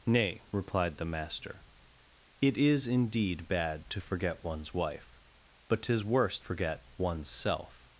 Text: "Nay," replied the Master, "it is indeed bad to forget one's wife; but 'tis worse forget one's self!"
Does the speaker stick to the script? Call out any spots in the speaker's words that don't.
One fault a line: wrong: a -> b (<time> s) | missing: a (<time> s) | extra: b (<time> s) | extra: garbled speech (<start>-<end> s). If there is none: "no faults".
no faults